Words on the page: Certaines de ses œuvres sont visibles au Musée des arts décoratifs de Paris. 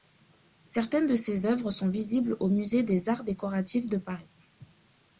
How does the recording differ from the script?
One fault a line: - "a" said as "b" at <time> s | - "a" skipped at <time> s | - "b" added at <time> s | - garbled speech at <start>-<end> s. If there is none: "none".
none